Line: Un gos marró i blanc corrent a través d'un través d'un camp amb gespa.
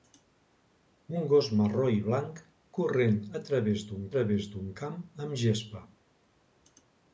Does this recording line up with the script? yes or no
yes